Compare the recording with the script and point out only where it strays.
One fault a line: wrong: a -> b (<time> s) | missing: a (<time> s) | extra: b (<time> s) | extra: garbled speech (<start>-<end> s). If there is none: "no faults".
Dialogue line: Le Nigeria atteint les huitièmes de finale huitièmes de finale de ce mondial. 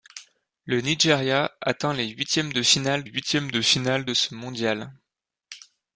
no faults